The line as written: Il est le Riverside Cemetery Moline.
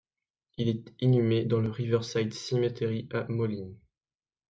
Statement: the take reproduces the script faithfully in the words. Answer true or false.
false